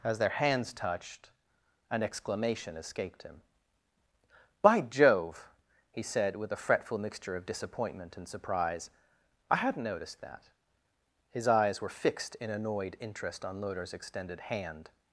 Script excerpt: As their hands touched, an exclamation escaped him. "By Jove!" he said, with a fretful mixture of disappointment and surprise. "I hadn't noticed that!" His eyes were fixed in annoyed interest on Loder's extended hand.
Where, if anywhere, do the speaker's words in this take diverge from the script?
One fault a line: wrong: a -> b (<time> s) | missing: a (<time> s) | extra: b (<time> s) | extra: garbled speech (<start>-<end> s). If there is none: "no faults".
no faults